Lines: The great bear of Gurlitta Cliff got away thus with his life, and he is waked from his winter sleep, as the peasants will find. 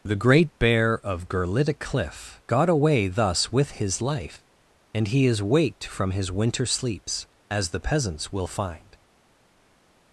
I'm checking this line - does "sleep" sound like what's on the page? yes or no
no